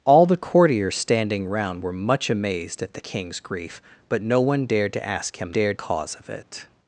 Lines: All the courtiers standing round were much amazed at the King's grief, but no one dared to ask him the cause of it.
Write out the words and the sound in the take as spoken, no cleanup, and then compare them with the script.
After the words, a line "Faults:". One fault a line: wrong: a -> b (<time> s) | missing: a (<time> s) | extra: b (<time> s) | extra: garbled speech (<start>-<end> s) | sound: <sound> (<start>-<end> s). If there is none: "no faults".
All the courtiers standing round were much amazed at the King's grief, but no one dared to ask him dared cause of it.
Faults:
wrong: the -> dared (5.5 s)